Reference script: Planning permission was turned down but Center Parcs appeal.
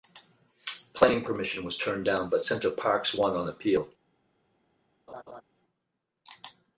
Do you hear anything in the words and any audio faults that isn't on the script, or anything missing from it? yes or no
yes